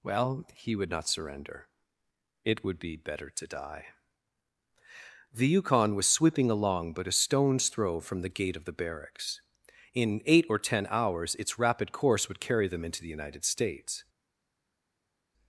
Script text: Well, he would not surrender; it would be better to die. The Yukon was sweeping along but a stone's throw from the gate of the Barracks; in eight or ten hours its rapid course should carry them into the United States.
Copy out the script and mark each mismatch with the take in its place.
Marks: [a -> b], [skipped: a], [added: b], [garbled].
Well, he would not surrender; it would be better to die. The Yukon was sweeping along but a stone's throw from the gate of the Barracks; in eight or ten hours its rapid course [should -> would] carry them into the United States.